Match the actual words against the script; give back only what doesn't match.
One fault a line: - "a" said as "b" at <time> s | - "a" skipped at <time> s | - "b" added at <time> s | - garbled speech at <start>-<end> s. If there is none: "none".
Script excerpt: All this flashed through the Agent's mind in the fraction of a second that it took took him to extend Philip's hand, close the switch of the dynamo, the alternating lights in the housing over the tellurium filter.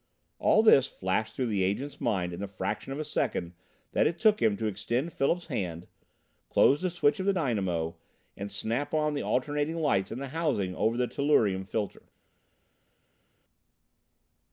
- "took" skipped at 4.4 s
- "and snap on" added at 8.4 s